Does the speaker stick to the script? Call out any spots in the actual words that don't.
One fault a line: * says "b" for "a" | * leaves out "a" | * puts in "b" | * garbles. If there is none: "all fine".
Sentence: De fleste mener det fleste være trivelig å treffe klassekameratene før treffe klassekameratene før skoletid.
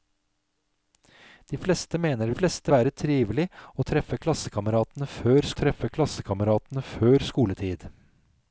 all fine